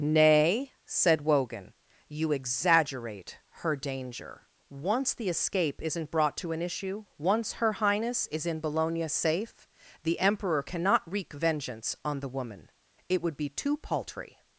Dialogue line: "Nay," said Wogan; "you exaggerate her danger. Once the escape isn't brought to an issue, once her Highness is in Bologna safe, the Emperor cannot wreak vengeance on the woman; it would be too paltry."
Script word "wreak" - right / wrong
right